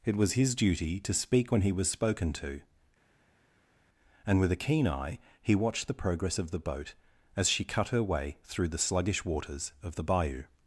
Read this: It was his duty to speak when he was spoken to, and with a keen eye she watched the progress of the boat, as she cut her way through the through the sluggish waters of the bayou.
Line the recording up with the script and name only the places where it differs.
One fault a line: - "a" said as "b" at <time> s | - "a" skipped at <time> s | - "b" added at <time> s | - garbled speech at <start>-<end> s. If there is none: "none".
- "she" said as "he" at 5.4 s
- "through the" skipped at 8.8 s